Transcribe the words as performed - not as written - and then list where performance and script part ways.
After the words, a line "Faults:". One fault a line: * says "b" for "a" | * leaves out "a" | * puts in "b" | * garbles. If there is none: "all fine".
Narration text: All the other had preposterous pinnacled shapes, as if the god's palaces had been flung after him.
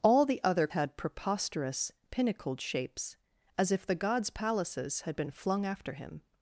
All the other had preposterous pinnacled shapes, as if the god's palaces had been flung after him.
Faults:
all fine